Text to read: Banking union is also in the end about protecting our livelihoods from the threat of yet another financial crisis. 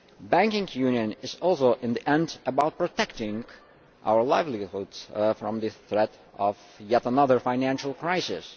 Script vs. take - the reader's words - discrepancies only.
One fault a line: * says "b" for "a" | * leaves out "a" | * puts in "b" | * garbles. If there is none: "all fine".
all fine